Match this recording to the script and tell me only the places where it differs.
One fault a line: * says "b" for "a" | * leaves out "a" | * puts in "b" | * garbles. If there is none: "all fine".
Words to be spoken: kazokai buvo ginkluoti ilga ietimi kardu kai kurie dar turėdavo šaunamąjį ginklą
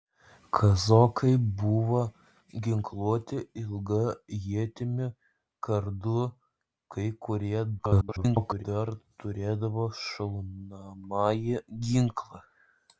* garbles